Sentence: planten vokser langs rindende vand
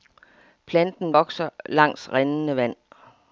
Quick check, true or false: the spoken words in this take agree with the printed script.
true